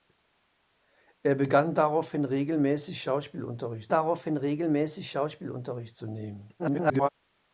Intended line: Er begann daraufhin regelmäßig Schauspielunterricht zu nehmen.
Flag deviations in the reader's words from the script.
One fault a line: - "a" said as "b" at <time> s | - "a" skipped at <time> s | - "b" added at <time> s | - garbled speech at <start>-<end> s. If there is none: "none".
- "daraufhin regelmäßig Schauspielunterricht" added at 3.9 s
- garbled speech at 6.6-7.1 s